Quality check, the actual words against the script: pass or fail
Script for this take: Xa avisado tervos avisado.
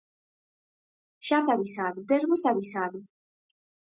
pass